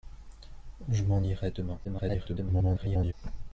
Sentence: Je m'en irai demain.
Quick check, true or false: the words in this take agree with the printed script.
false